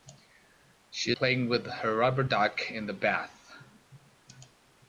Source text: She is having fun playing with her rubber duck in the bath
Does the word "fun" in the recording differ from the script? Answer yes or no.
yes